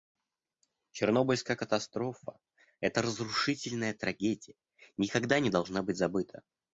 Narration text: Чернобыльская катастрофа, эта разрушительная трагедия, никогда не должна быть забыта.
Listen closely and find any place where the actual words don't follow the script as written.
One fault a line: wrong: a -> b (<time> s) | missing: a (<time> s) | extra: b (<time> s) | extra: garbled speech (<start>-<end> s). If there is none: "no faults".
no faults